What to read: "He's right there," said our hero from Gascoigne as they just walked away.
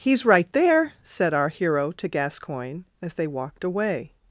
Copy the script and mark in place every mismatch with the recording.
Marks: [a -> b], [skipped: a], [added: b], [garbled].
"He's right there," said our hero [from -> to] Gascoigne as they [skipped: just] walked away.